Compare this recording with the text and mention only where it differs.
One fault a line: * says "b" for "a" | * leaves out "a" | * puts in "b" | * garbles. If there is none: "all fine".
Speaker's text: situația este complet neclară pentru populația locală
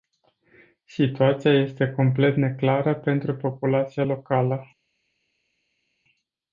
all fine